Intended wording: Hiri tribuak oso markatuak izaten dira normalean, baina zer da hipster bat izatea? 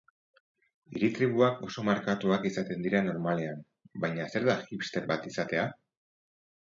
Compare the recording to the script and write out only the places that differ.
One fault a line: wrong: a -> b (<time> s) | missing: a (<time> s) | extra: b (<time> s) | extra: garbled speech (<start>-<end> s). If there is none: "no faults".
no faults